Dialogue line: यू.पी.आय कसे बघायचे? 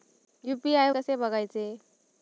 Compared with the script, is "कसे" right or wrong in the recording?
right